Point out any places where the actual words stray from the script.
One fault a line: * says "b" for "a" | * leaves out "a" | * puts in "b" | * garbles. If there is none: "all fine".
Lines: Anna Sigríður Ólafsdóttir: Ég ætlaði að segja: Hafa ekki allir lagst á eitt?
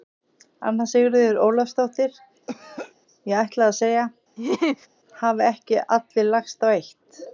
all fine